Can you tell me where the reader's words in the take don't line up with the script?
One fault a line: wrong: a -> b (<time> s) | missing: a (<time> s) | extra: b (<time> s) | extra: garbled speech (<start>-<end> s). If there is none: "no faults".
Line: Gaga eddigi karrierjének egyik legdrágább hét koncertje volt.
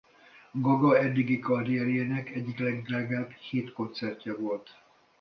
no faults